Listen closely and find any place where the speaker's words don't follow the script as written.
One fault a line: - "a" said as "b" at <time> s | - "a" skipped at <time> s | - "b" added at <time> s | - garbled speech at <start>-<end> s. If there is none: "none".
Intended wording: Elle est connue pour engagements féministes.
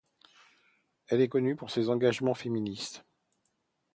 - "ses" added at 1.7 s